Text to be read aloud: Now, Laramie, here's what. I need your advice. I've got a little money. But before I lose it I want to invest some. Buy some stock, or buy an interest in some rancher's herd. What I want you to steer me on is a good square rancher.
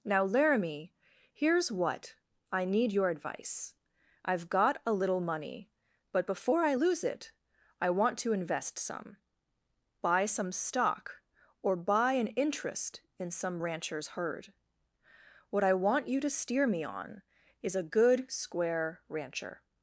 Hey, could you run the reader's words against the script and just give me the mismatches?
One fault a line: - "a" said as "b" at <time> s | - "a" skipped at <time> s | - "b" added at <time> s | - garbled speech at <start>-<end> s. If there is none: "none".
none